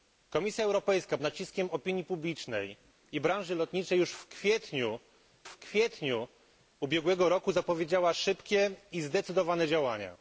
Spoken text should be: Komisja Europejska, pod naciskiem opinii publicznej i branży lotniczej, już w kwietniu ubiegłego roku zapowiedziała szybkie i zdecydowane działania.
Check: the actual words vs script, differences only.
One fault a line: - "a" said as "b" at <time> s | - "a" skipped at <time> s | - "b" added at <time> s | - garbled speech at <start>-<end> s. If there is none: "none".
- "pod" skipped at 1.2 s
- "w kwietniu" added at 5.4 s